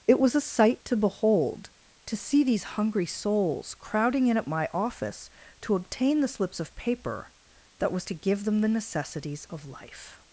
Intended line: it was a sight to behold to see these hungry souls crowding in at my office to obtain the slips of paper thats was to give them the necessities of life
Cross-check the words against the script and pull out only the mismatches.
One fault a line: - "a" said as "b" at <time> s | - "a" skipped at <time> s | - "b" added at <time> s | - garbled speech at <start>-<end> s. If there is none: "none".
- "thats" said as "that" at 7.8 s